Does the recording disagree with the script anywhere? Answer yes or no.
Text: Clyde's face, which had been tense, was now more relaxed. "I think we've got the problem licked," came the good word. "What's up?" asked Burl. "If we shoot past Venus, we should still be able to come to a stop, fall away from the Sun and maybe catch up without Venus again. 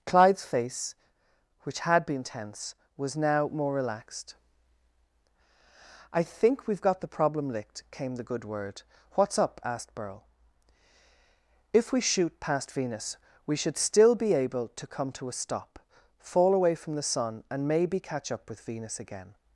yes